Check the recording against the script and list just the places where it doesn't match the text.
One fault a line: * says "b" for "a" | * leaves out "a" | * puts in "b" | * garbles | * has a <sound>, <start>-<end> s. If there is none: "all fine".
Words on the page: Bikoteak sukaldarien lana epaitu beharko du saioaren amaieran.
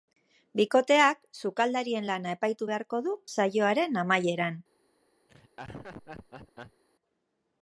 * has a laugh, 5.3-6.8 s